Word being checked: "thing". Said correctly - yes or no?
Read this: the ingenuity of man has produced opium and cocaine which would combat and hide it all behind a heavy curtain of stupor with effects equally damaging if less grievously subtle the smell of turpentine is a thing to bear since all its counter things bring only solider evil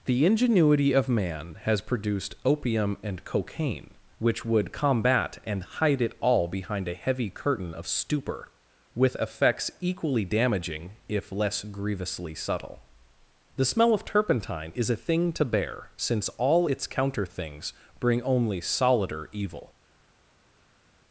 yes